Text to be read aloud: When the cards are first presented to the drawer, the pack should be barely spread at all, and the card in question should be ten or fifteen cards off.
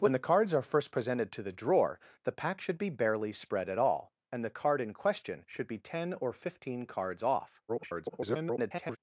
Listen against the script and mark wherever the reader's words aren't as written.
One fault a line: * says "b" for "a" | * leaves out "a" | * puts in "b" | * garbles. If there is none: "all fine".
* garbles